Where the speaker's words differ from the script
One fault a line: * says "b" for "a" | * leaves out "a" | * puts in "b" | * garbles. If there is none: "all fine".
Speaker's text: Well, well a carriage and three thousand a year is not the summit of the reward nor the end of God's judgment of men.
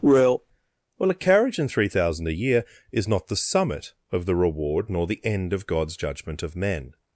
all fine